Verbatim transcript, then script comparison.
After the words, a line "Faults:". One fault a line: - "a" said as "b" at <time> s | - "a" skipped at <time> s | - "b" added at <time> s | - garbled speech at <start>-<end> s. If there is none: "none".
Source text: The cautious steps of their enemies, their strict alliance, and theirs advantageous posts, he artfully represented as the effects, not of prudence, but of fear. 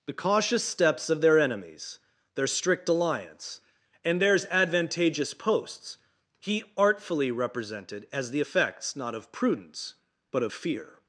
The cautious steps of their enemies, their strict alliance, and theirs advantageous posts, he artfully represented as the effects, not of prudence, but of fear.
Faults:
none